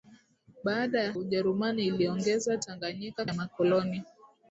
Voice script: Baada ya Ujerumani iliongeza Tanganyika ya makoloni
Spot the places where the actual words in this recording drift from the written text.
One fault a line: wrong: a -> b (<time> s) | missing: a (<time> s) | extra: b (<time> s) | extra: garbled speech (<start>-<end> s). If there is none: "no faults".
no faults